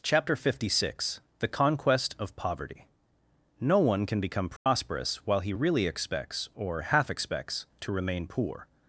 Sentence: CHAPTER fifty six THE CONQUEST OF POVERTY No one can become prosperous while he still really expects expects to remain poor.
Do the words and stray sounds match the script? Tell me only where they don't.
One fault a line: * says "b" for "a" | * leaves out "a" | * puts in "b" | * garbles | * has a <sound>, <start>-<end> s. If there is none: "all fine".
* has a dropout, 4.6-4.7 s
* leaves out "still"
* puts in "or half"